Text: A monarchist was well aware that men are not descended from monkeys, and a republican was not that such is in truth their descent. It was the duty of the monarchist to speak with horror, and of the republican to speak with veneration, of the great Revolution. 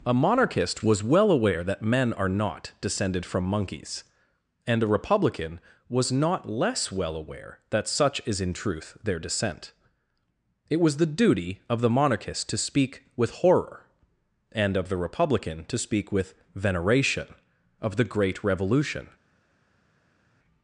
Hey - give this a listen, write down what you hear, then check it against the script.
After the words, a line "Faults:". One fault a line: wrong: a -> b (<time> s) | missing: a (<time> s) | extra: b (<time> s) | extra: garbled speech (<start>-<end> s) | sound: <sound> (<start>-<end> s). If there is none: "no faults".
A monarchist was well aware that men are not descended from monkeys, and a republican was not less well aware that such is in truth their descent. It was the duty of the monarchist to speak with horror, and of the republican to speak with veneration, of the great Revolution.
Faults:
extra: less well aware (6.5 s)